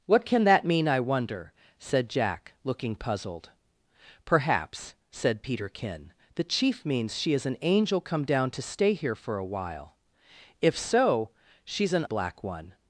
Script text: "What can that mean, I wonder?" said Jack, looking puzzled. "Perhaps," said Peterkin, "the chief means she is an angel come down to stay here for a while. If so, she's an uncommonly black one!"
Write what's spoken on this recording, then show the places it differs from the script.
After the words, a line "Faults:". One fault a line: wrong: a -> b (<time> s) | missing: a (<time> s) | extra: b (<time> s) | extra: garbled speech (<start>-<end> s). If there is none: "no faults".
"What can that mean, I wonder?" said Jack, looking puzzled. "Perhaps," said Peterkin, "the chief means she is an angel come down to stay here for a while. If so, she's an black one!"
Faults:
missing: uncommonly (12.0 s)